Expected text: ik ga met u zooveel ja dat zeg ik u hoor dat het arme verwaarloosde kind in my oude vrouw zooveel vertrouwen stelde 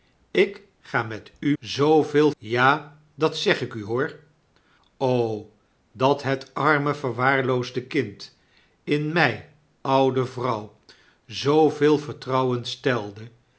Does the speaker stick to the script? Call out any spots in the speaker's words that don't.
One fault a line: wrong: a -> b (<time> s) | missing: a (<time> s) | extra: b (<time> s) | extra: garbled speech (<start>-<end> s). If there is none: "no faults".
no faults